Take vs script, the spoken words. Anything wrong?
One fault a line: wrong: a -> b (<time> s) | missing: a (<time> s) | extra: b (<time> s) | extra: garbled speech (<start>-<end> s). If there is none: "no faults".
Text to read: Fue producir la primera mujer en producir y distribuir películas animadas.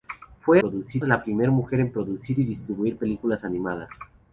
no faults